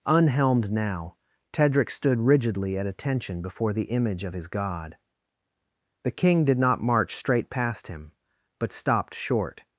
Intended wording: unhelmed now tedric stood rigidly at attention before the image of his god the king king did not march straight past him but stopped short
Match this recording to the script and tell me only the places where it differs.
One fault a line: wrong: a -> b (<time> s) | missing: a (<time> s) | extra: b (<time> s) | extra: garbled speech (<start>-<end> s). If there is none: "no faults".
missing: king (6.4 s)